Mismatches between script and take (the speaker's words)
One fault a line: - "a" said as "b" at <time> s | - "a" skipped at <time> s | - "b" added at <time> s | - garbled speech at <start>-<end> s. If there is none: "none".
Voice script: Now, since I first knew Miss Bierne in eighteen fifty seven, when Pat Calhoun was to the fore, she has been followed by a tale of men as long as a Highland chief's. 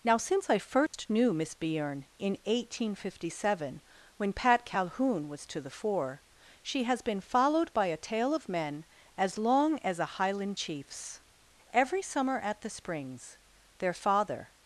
- "Every summer at the Springs their father" added at 11.7 s